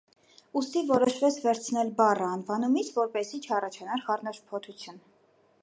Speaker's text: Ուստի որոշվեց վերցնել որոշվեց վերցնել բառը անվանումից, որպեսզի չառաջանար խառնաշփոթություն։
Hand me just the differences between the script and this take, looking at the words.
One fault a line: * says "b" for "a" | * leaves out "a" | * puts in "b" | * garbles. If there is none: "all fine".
* leaves out "որոշվեց վերցնել"